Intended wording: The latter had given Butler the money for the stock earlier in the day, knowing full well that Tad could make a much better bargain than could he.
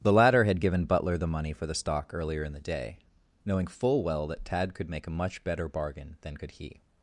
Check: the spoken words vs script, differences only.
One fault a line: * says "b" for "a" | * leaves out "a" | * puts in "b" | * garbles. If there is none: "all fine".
all fine